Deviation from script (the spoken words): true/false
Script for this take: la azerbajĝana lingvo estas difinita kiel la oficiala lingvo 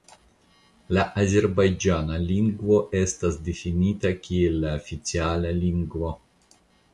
false